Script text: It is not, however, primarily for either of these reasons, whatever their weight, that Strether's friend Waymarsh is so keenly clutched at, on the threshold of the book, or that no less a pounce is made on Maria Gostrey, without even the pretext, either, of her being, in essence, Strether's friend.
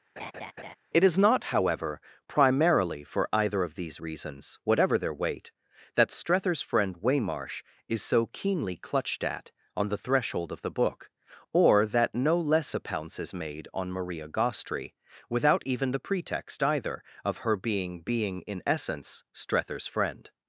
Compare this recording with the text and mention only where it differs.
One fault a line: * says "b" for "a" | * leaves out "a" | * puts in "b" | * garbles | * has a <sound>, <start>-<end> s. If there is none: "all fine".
* has a laugh, 0.2-0.8 s
* puts in "being"